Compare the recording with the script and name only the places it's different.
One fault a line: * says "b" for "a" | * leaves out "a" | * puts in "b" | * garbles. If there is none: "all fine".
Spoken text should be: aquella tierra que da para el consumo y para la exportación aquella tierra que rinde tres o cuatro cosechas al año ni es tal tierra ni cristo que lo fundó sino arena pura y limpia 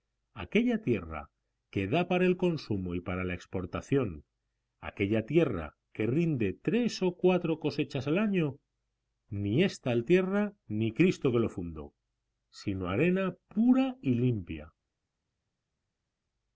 all fine